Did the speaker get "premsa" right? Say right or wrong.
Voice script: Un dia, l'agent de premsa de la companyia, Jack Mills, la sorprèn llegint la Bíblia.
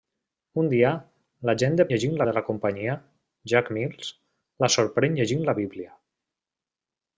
wrong